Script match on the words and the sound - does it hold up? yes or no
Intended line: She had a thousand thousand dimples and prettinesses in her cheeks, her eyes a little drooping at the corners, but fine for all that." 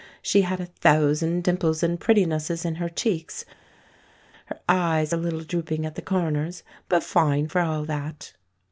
no